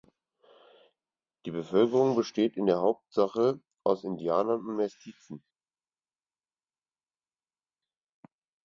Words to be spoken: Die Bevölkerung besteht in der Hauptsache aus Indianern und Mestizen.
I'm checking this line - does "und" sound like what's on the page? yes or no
yes